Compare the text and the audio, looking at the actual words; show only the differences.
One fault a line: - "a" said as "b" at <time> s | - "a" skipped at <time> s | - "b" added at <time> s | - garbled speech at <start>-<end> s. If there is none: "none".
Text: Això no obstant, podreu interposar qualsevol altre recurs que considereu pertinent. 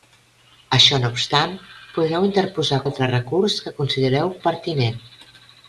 - "qualsevol" skipped at 2.8 s